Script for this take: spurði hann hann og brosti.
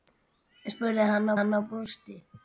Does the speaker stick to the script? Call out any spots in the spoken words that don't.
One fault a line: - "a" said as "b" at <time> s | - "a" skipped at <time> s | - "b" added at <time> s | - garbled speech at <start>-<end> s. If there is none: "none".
none